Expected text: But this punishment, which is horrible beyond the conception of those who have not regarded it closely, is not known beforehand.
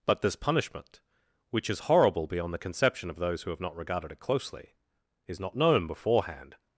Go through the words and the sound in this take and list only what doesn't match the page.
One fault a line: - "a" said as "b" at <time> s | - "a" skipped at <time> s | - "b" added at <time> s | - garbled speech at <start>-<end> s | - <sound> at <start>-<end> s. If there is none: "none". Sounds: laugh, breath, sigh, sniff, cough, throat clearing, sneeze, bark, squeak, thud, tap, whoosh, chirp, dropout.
none